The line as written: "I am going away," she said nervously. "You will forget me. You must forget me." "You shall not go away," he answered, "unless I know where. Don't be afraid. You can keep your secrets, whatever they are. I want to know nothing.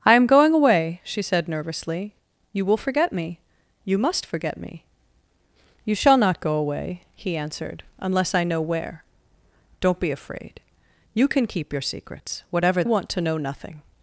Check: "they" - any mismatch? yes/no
yes